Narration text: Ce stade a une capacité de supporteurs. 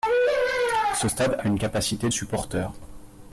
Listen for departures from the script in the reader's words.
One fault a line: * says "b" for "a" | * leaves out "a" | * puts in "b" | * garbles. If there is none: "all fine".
* leaves out "de"